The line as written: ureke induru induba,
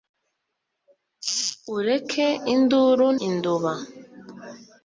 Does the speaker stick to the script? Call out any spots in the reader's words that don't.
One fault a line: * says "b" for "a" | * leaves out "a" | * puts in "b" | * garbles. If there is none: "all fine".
all fine